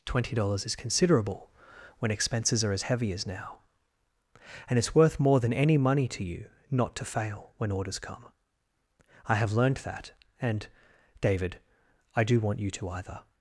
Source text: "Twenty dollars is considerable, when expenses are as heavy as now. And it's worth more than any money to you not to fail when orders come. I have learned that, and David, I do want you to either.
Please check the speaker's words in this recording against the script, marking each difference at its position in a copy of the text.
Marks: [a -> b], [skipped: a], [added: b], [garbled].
"Twenty dollars is considerable, when expenses are as heavy as now. And it's worth more than any money to you not to fail when orders come. I have learned that, and David, I do want you to either.